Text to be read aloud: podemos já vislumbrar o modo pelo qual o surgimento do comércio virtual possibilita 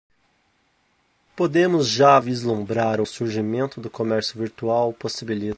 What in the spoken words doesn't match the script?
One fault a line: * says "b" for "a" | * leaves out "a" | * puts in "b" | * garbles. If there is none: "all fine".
* leaves out "modo pelo qual"